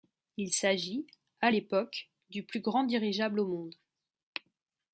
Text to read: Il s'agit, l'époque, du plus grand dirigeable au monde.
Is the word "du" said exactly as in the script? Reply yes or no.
yes